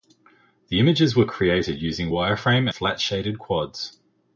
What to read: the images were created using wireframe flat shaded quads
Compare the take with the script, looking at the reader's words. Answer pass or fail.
pass